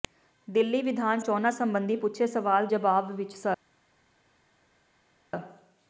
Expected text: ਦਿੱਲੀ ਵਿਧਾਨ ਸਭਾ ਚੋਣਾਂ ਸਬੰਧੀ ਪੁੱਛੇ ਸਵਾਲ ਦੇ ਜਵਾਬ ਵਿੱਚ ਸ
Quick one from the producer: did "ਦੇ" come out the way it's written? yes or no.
no